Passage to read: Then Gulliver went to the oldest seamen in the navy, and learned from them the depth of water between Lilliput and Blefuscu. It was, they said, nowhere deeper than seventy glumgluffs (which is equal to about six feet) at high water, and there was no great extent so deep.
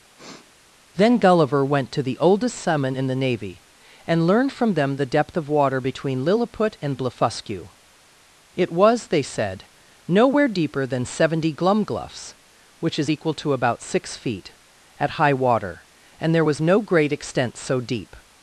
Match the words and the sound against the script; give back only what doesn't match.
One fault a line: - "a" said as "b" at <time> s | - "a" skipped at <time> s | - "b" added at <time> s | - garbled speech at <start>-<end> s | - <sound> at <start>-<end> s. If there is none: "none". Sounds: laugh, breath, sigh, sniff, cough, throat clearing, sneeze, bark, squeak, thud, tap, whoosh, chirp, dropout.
- sniff at 0.2-0.5 s